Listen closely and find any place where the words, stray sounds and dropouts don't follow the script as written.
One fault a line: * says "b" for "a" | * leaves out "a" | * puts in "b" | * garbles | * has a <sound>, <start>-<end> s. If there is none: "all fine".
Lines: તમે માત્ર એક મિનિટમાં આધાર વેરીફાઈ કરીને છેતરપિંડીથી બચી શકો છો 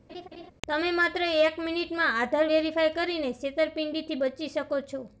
* has a laugh, 0.1-0.5 s